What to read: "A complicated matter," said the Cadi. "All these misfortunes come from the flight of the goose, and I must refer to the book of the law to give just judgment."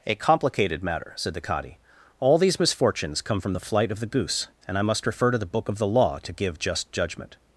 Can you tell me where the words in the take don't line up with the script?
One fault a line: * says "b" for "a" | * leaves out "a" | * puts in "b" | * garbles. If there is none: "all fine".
all fine